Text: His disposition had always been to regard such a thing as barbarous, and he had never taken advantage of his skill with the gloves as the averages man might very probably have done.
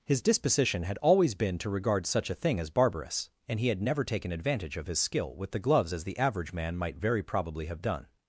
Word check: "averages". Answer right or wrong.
wrong